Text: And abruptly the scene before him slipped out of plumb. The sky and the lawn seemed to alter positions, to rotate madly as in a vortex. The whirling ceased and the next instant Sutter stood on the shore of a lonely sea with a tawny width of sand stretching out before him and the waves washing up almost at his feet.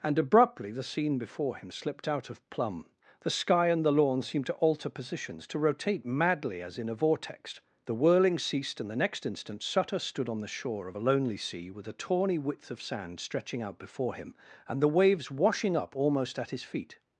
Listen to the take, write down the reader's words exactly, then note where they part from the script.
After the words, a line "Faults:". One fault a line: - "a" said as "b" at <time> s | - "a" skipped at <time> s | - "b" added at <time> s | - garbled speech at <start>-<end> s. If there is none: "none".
And abruptly the scene before him slipped out of plumb. The sky and the lawn seemed to alter positions, to rotate madly as in a vortex. The whirling ceased and the next instant Sutter stood on the shore of a lonely sea with a tawny width of sand stretching out before him and the waves washing up almost at his feet.
Faults:
none